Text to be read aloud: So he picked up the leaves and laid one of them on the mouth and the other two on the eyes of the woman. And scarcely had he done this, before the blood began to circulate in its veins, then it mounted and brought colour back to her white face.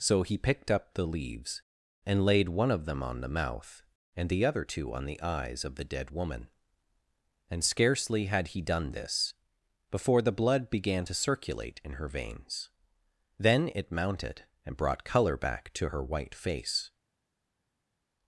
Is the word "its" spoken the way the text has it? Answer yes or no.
no